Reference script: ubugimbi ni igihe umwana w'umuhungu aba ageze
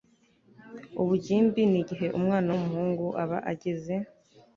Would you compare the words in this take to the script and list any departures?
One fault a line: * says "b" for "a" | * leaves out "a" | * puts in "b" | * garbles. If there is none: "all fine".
all fine